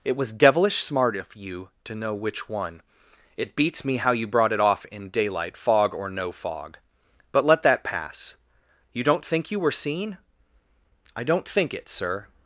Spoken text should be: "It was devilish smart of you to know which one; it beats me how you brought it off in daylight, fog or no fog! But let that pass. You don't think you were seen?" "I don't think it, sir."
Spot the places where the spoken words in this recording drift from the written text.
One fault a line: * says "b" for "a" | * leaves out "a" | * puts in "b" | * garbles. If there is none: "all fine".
all fine